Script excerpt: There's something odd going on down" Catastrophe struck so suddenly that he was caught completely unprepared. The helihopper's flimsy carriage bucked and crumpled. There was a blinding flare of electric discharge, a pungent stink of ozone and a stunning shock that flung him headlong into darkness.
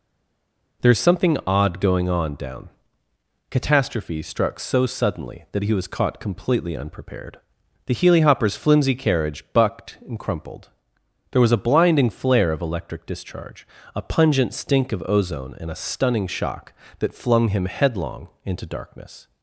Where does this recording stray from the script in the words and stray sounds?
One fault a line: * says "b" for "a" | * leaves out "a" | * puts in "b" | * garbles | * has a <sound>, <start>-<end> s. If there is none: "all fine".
all fine